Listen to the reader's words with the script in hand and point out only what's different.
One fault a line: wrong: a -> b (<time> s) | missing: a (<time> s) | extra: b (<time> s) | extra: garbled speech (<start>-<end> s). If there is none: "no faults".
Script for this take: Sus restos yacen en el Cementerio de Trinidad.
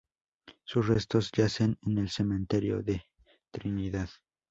no faults